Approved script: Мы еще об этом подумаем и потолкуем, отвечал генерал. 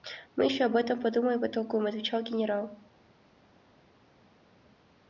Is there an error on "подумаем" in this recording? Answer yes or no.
no